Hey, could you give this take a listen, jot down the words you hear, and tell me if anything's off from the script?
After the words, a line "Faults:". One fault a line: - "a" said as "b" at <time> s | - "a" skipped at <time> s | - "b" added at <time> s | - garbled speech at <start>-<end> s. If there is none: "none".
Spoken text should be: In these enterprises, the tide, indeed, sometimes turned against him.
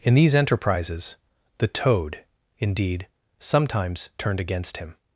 In these enterprises, the toad, indeed, sometimes turned against him.
Faults:
- "tide" said as "toad" at 1.7 s